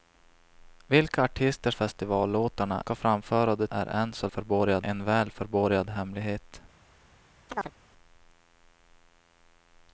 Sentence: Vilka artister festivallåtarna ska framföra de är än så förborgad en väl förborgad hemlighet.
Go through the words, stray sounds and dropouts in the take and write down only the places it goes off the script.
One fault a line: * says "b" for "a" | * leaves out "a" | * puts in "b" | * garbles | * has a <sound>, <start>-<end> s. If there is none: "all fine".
* has a chirp, 7.5-7.8 s